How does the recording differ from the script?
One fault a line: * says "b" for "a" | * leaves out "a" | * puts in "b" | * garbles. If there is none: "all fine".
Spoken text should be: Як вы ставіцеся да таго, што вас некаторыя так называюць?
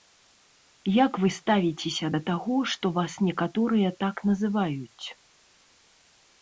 all fine